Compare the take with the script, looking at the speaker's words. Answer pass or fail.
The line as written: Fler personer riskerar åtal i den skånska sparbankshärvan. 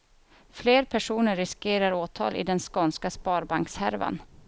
pass